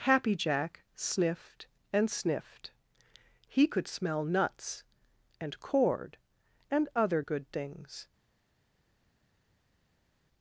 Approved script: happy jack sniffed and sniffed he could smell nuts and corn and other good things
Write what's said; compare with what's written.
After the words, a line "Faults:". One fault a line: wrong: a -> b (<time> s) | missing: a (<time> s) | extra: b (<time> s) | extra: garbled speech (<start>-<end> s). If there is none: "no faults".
happy jack sniffed and sniffed he could smell nuts and cord and other good things
Faults:
wrong: corn -> cord (5.6 s)